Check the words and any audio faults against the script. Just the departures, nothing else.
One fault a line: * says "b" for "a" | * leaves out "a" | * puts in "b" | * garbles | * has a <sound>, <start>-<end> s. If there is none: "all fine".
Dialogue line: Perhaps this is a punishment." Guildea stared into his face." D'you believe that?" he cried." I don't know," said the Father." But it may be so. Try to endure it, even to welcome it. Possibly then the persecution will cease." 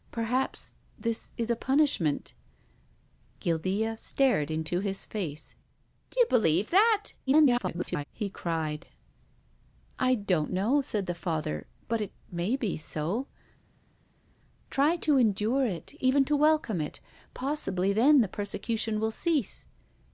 * garbles